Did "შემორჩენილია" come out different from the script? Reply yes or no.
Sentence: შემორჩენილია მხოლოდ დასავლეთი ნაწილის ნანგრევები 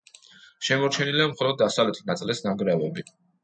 no